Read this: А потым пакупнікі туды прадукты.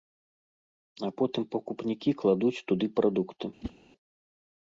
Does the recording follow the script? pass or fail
fail